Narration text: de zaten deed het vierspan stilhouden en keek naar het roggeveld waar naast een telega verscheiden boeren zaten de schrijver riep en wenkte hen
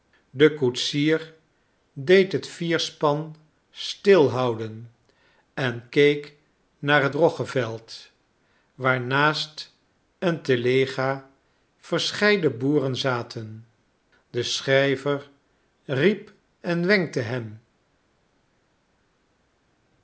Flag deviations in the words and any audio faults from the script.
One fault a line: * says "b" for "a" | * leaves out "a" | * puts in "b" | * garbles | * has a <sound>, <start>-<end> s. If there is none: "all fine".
* says "koetsier" for "zaten"